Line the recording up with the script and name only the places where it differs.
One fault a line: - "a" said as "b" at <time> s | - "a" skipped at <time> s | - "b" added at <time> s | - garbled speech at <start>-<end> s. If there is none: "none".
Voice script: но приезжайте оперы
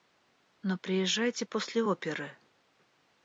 - "после" added at 1.4 s